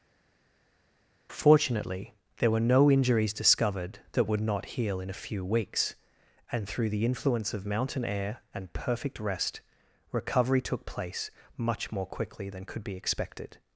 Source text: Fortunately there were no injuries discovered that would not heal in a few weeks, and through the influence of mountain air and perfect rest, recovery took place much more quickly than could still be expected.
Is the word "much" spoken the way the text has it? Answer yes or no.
yes